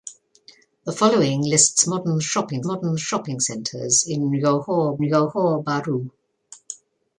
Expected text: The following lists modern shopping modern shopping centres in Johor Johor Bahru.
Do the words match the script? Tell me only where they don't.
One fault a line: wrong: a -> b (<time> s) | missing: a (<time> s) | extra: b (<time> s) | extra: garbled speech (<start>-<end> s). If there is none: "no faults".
no faults